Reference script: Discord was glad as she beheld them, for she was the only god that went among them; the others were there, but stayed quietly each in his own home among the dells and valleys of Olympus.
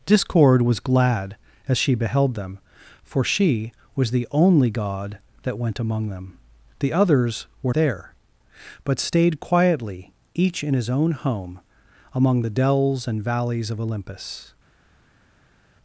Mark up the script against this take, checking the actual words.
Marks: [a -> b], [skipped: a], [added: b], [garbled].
Discord was glad as she beheld them, for she was the only god that went among them; the others were there, but stayed quietly each in his own home among the dells and valleys of Olympus.